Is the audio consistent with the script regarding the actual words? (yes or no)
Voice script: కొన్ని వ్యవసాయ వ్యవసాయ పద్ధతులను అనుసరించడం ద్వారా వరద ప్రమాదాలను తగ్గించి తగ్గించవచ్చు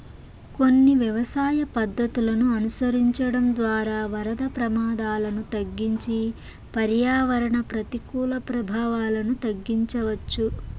no